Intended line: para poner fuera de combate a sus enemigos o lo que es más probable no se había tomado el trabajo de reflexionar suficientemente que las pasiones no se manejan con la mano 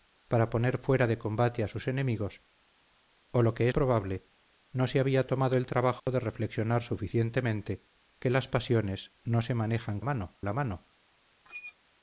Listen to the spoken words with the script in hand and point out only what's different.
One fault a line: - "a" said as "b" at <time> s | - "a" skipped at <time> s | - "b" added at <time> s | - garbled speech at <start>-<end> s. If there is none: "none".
- "es más" skipped at 3.7 s
- "con" said as "mano" at 10.0 s